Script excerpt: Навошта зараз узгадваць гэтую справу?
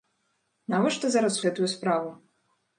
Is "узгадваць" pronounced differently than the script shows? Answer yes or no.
yes